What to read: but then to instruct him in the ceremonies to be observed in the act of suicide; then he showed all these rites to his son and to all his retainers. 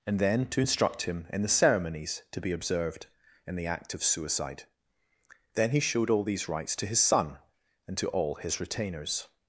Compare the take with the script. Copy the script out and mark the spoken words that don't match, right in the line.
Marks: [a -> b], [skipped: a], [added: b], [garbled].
[but -> and] then to instruct him in the ceremonies to be observed in the act of suicide; then he showed all these rites to his son and to all his retainers.